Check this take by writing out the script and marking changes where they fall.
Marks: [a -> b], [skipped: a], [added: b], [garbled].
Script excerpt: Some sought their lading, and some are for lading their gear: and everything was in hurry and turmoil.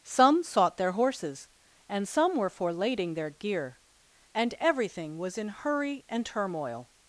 Some sought their [lading, -> horses] and some [are -> were] for lading their gear: and everything was in hurry and turmoil.